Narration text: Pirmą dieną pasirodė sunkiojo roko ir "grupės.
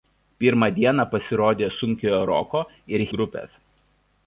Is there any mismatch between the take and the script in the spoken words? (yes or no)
no